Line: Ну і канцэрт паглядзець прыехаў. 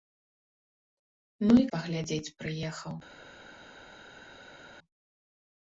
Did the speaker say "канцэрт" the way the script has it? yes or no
no